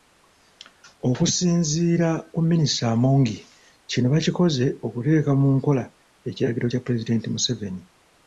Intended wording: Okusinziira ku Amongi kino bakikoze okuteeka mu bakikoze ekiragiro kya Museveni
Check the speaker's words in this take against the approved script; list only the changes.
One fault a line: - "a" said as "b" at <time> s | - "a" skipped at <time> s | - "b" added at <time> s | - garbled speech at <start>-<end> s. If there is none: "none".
- "Minisita" added at 2.5 s
- "bakikoze" said as "nkola" at 5.6 s
- "Pulezidenti" added at 6.8 s